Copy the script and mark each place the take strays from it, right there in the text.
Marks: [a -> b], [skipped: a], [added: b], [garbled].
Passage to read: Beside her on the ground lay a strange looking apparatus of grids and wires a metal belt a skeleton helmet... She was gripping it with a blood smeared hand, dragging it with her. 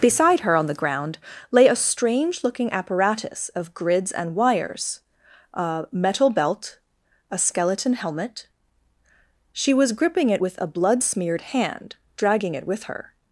Beside her on the ground lay a strange looking apparatus of grids and wires a metal belt a skeleton helmet... She was gripping it with a blood smeared hand, dragging it with her.